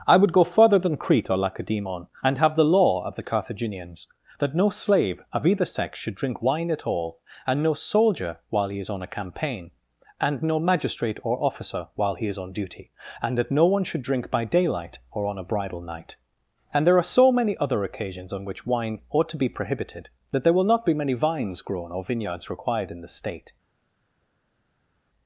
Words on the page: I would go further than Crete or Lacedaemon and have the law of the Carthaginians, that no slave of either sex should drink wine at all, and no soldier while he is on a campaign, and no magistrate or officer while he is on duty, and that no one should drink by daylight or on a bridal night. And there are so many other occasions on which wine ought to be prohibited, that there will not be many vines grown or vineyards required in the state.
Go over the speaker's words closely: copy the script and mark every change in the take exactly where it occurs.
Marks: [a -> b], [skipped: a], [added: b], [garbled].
I would go further than Crete or Lacedaemon and have the law of the Carthaginians, that no slave of either sex should drink wine at all, and no soldier while he is on a campaign, and no magistrate or officer while he is on duty, and that no one should drink by daylight or on a bridal night. And there are so many other occasions on which wine ought to be prohibited, that there will not be many vines grown or vineyards required in the state.